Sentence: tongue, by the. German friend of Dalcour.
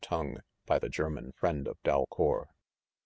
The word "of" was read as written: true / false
true